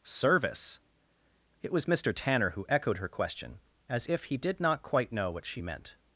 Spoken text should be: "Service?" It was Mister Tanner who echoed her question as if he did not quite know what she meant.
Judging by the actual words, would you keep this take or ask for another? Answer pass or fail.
pass